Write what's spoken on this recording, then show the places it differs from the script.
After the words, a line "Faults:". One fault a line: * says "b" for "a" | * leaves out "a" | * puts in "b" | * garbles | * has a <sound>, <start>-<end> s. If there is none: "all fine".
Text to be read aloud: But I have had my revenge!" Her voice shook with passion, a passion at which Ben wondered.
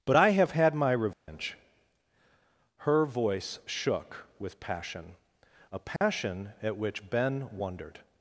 But I have had my revenge!" Her voice shook with passion, a passion at which Ben wondered.
Faults:
* has a dropout, 1.1-1.3 s
* has a dropout, 6.0-6.0 s